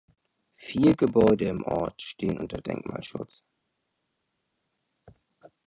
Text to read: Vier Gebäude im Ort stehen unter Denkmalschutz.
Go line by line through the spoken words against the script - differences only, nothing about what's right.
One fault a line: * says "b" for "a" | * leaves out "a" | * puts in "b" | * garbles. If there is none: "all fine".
all fine